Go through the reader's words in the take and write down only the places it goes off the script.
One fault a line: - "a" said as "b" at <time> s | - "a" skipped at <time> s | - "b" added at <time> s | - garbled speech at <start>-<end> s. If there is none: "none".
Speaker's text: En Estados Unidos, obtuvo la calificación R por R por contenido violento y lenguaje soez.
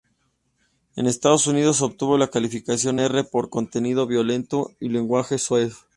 - "R por" skipped at 3.5 s